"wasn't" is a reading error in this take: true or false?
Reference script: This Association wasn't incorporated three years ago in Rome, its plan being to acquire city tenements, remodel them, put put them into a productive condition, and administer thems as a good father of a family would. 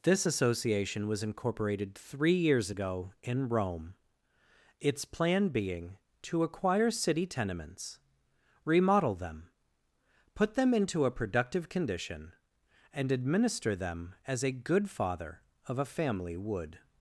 true